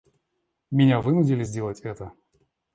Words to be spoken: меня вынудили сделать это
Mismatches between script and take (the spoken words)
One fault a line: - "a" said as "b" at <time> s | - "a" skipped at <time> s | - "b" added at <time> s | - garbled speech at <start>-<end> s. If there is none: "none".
none